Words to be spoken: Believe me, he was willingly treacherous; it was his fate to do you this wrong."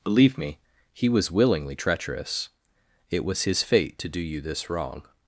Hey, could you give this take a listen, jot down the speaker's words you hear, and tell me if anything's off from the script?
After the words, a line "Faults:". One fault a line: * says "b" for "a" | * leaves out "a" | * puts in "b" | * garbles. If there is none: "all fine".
Believe me, he was willingly treacherous; it was his fate to do you this wrong."
Faults:
all fine